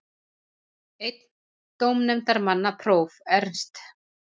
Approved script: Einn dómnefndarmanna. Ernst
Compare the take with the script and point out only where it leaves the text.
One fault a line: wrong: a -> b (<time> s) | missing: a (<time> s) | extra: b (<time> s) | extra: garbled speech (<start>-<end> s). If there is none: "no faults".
extra: próf (2.9 s)